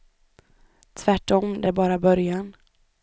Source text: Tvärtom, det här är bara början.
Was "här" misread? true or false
true